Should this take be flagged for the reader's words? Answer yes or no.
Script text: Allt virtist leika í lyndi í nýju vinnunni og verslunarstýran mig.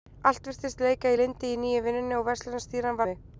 no